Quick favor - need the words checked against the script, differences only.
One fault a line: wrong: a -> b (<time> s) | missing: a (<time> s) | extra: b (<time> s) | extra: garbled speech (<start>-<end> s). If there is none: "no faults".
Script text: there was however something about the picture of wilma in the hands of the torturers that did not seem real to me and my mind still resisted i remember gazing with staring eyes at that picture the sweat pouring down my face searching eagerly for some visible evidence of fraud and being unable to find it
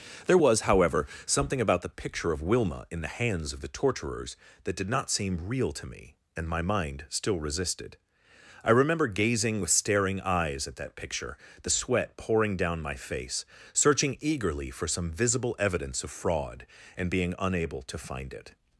no faults